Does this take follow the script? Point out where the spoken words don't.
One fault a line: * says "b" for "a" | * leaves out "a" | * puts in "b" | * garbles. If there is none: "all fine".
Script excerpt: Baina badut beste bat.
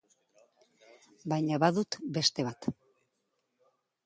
all fine